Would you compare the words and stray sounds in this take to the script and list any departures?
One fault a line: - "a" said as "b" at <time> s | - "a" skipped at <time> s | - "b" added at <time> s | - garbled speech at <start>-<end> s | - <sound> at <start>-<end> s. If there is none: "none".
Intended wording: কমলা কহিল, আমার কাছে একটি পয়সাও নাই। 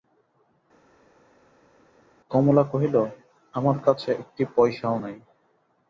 none